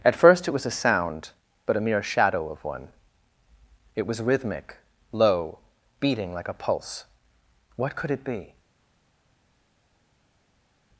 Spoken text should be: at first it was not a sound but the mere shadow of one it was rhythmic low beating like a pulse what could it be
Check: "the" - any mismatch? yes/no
yes